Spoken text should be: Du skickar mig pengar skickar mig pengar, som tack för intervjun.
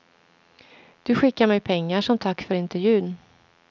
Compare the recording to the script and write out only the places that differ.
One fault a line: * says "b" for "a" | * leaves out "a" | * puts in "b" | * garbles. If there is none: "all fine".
* leaves out "skickar mig pengar"